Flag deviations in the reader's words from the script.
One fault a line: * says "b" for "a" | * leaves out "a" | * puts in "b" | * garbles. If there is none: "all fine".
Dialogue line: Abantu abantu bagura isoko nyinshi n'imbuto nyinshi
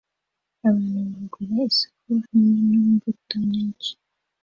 * leaves out "abantu"
* says "hamwe" for "nyinshi"